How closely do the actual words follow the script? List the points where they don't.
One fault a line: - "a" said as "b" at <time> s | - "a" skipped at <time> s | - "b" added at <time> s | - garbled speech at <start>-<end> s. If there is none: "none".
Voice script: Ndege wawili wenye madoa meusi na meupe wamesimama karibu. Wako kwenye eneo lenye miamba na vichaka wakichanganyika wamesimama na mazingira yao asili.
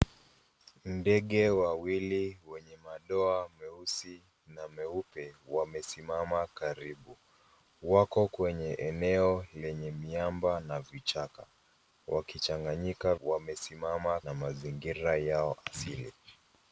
none